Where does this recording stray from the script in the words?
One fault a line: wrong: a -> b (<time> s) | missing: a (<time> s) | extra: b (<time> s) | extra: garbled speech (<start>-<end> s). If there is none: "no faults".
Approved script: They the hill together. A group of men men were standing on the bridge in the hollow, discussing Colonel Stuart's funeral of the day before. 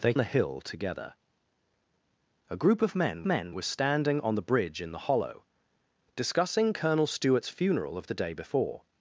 no faults